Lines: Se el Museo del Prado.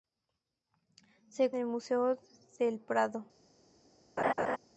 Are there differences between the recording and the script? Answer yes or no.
no